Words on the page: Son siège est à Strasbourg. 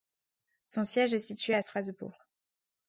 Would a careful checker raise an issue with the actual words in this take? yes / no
yes